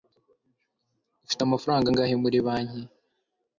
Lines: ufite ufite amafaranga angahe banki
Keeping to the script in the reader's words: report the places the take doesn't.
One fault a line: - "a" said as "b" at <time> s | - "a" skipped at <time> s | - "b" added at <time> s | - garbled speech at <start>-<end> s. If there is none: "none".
- "ufite" skipped at 1.4 s
- "muri" added at 2.2 s